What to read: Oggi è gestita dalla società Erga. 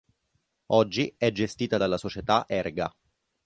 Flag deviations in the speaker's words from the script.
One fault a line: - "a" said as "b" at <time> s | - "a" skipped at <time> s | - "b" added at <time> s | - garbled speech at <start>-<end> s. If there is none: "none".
none